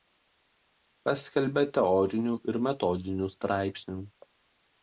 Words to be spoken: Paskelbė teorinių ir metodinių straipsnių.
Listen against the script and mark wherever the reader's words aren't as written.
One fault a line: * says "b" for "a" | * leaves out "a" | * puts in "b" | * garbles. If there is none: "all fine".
all fine